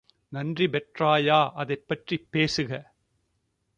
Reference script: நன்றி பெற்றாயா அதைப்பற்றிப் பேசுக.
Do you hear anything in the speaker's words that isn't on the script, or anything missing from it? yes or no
no